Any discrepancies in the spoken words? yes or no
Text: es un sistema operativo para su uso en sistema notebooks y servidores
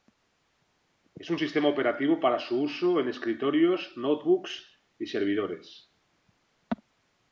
yes